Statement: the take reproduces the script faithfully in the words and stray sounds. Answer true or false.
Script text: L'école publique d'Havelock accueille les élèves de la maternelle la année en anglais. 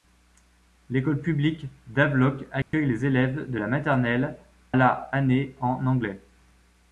false